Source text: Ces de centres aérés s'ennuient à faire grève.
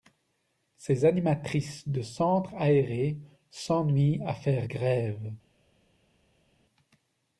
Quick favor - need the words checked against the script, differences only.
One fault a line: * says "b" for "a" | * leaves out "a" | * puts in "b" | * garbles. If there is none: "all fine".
* puts in "animatrices"